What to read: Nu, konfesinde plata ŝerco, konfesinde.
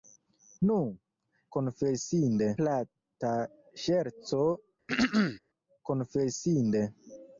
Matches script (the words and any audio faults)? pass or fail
fail